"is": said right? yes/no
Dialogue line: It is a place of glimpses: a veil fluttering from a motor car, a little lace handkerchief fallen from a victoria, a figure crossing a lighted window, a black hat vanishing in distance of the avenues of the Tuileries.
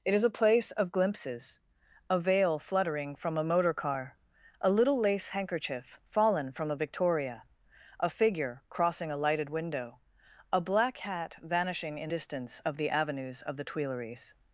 yes